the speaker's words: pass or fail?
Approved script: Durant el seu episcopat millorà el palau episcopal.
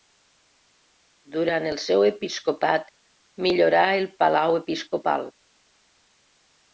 pass